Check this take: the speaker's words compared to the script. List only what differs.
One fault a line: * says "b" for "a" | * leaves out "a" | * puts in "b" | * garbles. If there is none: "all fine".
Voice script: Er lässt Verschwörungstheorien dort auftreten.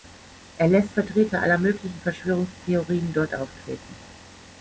* puts in "Vertreter aller möglichen"